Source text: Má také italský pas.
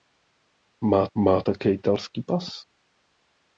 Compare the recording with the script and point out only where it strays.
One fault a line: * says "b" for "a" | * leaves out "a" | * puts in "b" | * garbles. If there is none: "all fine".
* puts in "má"